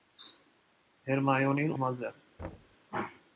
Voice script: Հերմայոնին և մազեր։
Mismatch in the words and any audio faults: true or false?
true